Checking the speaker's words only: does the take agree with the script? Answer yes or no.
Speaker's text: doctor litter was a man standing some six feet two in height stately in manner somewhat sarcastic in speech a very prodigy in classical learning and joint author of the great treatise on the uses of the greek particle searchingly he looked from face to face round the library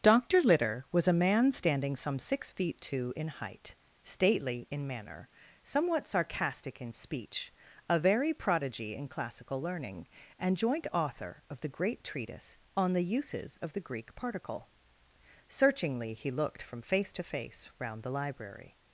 yes